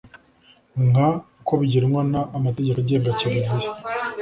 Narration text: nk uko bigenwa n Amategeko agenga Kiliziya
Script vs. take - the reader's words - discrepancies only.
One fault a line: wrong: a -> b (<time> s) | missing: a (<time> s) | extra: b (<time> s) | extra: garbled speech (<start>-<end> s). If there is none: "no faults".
no faults